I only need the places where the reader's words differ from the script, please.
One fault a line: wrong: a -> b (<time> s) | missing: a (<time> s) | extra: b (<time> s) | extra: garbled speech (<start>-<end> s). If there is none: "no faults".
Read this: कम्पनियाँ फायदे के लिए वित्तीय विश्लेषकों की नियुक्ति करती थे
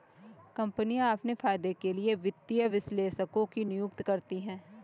extra: अपने (1.1 s)
wrong: थे -> हैं (4.4 s)